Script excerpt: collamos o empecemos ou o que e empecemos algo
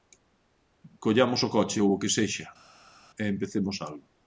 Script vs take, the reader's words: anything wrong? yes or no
yes